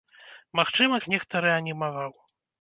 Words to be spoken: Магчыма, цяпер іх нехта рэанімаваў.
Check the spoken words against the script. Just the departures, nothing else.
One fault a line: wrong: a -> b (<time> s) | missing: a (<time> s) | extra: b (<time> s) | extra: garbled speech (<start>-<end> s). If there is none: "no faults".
missing: цяпер (0.9 s)